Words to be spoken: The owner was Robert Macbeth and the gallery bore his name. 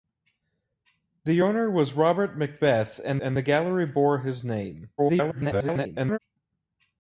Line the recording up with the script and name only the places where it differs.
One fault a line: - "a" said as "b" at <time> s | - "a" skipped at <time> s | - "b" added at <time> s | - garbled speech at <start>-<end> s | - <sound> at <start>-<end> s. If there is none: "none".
- "and" added at 3.2 s
- garbled speech at 5.0-6.2 s